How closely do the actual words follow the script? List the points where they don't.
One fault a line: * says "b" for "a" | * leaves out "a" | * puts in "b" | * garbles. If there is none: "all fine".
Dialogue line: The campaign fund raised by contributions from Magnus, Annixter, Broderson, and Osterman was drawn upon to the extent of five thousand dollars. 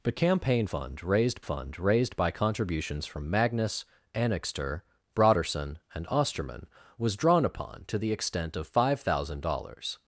* puts in "fund raised"